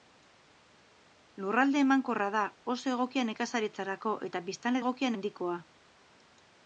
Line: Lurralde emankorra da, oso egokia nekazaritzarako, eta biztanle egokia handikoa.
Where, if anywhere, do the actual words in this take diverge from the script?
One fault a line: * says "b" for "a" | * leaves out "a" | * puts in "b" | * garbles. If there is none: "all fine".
all fine